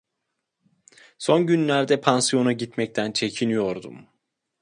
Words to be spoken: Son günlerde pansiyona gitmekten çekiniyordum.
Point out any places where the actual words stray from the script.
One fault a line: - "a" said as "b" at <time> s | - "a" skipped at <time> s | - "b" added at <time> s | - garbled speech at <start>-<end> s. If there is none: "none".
none